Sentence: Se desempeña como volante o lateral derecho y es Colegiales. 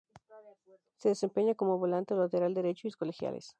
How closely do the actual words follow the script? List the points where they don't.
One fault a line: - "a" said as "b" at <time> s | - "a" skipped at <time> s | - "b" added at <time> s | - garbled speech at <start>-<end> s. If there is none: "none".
none